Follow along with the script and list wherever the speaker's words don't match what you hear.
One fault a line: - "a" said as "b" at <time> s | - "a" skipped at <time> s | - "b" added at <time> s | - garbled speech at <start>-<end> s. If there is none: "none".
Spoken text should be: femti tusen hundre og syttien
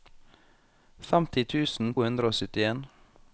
none